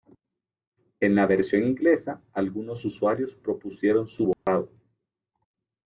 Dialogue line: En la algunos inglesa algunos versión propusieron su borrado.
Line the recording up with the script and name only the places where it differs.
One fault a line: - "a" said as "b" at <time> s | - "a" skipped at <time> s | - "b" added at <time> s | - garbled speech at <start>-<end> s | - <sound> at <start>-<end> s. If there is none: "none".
- "algunos" said as "versión" at 1.3 s
- "versión" said as "usuarios" at 2.9 s
- dropout at 4.3-4.5 s